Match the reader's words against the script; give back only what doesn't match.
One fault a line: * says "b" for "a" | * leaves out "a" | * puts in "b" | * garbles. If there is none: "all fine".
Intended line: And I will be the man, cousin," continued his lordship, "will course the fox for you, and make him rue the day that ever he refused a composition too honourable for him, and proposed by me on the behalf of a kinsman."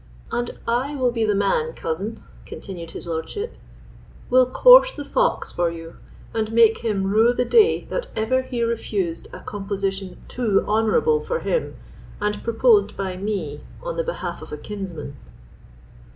all fine